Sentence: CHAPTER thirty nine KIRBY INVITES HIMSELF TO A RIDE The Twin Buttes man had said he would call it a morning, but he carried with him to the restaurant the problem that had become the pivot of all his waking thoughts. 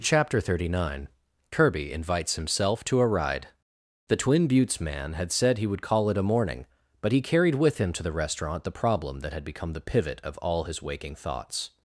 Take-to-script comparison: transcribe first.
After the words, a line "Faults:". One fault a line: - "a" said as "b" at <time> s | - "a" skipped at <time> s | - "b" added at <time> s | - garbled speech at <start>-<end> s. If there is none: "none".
CHAPTER thirty nine KIRBY INVITES HIMSELF TO A RIDE The Twin Buttes man had said he would call it a morning, but he carried with him to the restaurant the problem that had become the pivot of all his waking thoughts.
Faults:
none